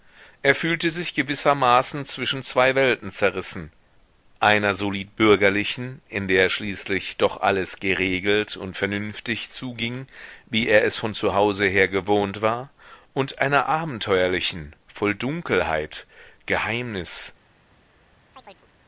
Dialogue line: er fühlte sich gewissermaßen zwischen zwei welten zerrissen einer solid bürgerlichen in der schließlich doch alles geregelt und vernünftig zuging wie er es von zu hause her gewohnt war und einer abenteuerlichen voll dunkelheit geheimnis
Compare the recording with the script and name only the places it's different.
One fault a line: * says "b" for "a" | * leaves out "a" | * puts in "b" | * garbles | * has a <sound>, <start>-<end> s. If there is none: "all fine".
* has a chirp, 18.3-18.7 s